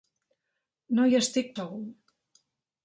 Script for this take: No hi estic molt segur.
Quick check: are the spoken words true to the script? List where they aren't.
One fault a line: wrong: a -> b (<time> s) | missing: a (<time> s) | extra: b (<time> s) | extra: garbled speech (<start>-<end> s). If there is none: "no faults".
missing: molt (1.5 s)